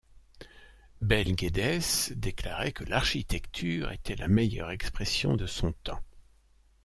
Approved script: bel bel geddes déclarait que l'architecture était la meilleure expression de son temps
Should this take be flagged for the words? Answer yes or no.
yes